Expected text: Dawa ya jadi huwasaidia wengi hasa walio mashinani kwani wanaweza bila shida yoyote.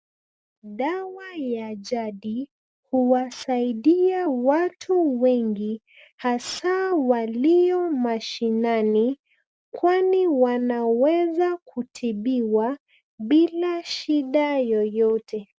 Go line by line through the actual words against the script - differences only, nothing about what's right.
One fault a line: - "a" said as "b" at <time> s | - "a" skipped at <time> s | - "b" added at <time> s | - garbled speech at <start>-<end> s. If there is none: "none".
- "watu" added at 4.3 s
- "kutibiwa" added at 11.6 s